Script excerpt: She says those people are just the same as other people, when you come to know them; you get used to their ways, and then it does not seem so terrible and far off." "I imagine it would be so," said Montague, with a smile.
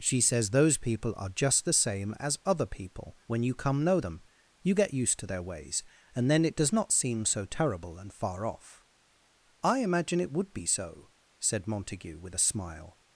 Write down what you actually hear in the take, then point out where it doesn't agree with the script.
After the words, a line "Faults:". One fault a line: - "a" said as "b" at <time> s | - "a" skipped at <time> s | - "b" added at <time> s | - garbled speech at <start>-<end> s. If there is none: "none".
She says those people are just the same as other people, when you come know them; you get used to their ways, and then it does not seem so terrible and far off." "I imagine it would be so," said Montague, with a smile.
Faults:
- "to" skipped at 3.8 s